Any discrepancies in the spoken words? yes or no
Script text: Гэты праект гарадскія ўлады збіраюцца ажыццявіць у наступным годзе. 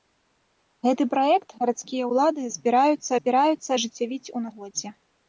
yes